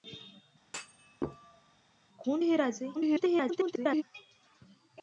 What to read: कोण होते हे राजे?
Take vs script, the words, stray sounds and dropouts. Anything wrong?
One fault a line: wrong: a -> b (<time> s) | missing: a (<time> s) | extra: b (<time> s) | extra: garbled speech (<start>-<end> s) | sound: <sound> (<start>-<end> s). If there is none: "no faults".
sound: thud (0.6-1.8 s)
missing: होते (2.4 s)
extra: garbled speech (2.9-4.0 s)